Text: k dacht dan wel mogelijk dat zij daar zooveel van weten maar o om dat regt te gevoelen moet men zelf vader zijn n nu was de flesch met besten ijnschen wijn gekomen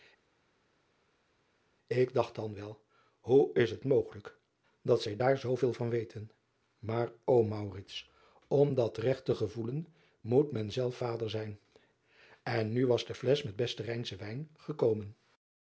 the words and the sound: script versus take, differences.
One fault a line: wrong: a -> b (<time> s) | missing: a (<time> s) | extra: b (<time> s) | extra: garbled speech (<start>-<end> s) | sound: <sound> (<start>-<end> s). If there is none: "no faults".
extra: hoe is het (3.2 s)